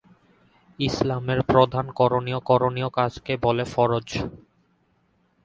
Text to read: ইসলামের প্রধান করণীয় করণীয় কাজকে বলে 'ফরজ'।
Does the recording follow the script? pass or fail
pass